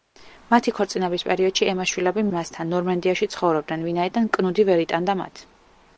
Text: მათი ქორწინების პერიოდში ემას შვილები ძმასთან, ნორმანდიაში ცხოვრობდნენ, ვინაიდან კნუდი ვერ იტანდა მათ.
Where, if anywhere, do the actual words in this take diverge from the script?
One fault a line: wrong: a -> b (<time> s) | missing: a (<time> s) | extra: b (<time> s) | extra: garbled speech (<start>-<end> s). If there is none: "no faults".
no faults